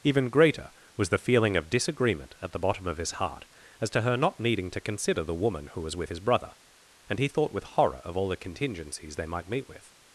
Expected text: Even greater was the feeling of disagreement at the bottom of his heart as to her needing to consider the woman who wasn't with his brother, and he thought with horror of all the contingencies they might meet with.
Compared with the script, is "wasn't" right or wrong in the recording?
wrong